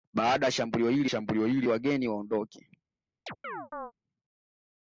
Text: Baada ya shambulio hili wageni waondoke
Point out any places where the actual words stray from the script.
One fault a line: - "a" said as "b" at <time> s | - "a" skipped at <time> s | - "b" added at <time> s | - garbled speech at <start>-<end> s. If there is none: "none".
- "shambulio hili" added at 1.0 s